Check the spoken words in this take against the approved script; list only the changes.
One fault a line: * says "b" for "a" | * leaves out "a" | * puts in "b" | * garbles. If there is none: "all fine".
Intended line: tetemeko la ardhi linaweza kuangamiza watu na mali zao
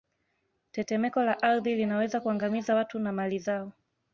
all fine